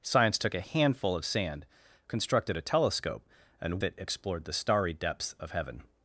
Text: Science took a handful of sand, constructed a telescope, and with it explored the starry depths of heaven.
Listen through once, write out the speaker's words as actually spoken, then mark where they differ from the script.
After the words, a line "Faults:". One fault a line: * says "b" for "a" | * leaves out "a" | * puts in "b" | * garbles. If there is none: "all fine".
Science took a handful of sand, constructed a telescope, and it explored the starry depths of heaven.
Faults:
* leaves out "with"